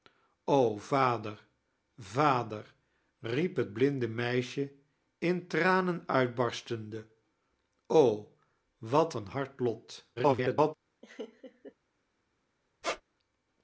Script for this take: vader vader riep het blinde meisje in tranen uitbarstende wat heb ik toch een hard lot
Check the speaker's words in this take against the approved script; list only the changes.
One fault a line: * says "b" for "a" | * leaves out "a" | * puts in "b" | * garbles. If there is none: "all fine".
* leaves out "heb ik toch"
* garbles